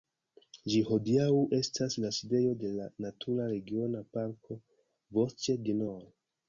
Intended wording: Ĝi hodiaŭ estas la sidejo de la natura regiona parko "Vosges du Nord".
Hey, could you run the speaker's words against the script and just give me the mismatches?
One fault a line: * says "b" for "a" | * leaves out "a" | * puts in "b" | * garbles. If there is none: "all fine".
all fine